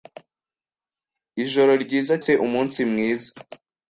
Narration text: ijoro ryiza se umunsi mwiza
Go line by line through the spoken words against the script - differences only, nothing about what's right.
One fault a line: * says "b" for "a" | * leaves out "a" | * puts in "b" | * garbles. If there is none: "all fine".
all fine